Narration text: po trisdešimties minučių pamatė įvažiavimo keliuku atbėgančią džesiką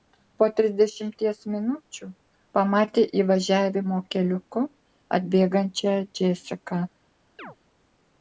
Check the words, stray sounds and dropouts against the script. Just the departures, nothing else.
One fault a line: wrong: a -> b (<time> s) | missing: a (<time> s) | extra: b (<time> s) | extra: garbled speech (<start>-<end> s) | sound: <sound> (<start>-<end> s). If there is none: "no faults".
sound: chirp (7.4-7.6 s)